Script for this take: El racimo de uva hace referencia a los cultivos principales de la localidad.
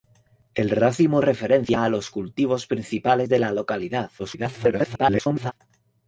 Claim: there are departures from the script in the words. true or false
true